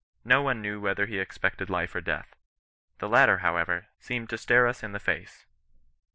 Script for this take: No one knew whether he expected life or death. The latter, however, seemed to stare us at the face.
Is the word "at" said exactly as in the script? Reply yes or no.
no